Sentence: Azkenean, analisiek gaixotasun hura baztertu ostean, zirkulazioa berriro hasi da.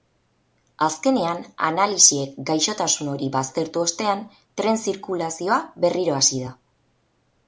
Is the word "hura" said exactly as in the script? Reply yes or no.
no